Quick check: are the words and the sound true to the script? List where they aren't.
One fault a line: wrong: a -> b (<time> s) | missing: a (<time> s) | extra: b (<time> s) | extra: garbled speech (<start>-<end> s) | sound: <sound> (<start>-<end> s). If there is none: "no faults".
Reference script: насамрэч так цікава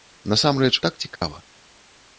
sound: dropout (1.2-1.2 s)